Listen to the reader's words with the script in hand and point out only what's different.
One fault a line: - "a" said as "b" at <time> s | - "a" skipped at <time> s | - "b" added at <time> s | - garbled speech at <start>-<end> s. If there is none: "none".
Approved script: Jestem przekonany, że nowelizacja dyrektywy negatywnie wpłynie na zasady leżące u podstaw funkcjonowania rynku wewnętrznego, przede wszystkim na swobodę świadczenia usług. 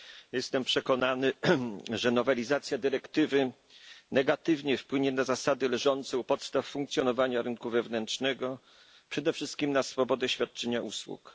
none